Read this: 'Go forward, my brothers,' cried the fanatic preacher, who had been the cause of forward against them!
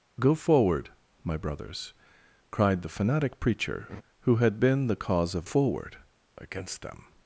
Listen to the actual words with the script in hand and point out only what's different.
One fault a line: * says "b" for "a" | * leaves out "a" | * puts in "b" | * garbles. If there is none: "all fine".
all fine